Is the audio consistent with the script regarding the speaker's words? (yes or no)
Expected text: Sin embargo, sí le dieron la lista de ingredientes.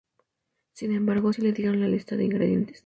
yes